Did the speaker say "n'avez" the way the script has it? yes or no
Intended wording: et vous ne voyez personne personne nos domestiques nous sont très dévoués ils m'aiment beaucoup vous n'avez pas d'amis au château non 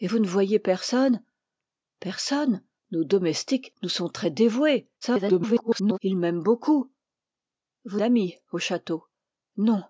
no